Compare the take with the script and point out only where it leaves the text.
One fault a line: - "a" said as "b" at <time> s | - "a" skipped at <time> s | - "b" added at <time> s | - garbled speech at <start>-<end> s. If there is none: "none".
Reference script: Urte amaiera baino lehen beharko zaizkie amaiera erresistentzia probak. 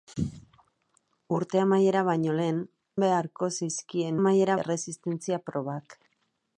none